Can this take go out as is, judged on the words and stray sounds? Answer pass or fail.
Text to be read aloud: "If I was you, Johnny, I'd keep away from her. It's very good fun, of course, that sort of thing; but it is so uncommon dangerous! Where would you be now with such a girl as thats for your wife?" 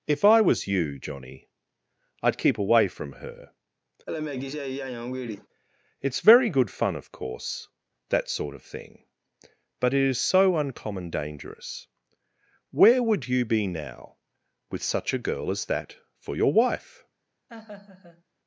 fail